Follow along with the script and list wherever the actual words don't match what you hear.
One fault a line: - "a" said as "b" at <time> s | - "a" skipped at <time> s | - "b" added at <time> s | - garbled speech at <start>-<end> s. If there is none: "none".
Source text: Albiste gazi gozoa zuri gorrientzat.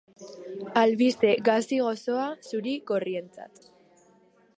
none